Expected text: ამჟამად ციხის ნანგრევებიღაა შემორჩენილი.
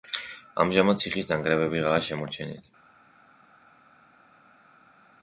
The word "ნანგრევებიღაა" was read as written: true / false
true